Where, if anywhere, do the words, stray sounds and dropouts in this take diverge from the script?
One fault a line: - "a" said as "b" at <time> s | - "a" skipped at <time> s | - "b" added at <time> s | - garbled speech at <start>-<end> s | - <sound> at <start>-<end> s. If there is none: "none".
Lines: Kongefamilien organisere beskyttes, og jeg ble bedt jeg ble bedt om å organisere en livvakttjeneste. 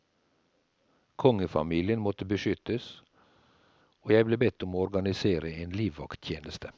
- "organisere" said as "måtte" at 2.0 s
- "jeg ble bedt" skipped at 4.6 s